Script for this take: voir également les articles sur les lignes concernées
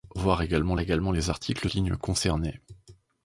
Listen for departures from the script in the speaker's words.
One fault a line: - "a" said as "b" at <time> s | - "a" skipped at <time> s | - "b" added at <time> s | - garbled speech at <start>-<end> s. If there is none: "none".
- "également" added at 0.8 s
- "sur les" skipped at 1.7 s